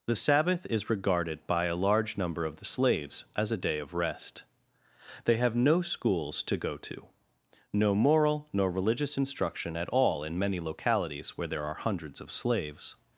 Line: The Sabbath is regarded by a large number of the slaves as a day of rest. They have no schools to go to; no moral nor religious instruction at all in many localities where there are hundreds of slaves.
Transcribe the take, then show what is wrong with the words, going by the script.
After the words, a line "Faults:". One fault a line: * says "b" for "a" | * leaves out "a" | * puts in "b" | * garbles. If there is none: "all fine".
The Sabbath is regarded by a large number of the slaves as a day of rest. They have no schools to go to; no moral nor religious instruction at all in many localities where there are hundreds of slaves.
Faults:
all fine